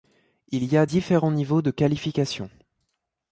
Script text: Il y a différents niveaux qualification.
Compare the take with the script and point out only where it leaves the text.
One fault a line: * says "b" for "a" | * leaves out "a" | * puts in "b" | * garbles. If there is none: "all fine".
* puts in "de"